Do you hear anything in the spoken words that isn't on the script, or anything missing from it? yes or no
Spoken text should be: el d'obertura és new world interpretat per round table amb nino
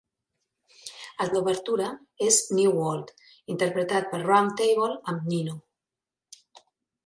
no